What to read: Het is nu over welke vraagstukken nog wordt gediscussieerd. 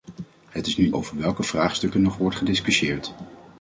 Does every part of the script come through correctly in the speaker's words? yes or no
yes